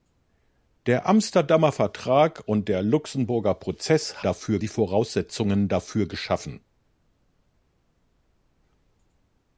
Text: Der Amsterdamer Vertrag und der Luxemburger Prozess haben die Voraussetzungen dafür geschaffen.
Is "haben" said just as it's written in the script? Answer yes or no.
no